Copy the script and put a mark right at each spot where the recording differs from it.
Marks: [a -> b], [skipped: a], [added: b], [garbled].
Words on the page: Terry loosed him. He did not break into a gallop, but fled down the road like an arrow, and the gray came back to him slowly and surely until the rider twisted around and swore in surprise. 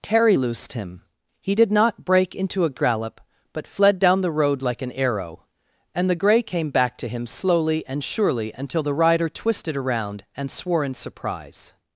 Terry loosed him. He did not break into a gallop, but fled down the road like an arrow, and the gray came back to him slowly and surely until the rider twisted around and swore in surprise.